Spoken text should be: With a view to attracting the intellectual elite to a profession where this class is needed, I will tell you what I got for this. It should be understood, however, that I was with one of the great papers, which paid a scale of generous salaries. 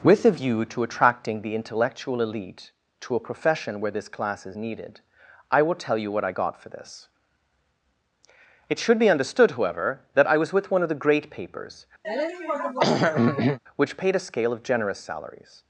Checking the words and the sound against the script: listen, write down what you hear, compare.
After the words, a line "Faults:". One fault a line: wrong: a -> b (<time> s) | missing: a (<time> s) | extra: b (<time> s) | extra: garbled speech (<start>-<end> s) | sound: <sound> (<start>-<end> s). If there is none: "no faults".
With a view to attracting the intellectual elite to a profession where this class is needed, I will tell you what I got for this. It should be understood, however, that I was with one of the great papers, which paid a scale of generous salaries.
Faults:
sound: throat clearing (12.0-13.6 s)